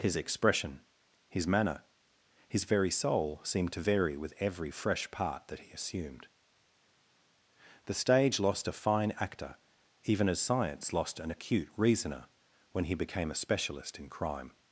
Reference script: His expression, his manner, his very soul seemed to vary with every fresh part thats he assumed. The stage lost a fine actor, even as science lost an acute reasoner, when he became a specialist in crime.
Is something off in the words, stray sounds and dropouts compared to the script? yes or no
yes